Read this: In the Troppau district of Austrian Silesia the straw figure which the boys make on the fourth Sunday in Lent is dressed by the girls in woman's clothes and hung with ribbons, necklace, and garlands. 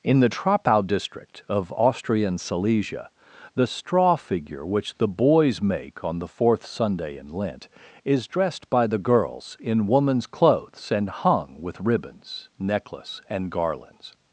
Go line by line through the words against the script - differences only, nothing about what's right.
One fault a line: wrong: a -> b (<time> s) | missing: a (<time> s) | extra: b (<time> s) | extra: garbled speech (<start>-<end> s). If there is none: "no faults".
no faults